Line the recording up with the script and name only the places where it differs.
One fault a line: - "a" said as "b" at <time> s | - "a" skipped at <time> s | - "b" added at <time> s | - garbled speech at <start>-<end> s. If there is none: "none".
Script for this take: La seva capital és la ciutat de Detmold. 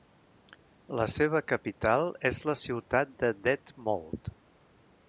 none